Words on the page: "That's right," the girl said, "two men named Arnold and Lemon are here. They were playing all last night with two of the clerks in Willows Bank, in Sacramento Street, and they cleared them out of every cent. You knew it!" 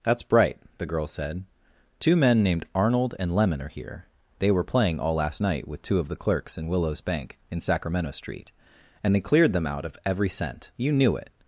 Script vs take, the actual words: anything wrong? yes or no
yes